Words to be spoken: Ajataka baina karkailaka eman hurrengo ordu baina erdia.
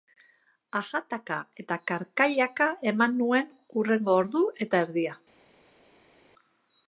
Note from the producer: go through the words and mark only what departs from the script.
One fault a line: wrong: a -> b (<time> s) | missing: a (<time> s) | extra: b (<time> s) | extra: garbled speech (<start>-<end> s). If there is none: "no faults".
wrong: baina -> eta (1.6 s)
extra: nuen (3.2 s)
wrong: baina -> eta (4.7 s)